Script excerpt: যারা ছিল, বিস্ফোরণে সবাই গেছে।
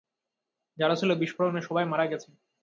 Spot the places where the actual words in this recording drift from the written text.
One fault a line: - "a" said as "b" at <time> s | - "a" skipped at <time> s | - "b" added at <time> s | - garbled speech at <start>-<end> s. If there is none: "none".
- "মারা" added at 1.9 s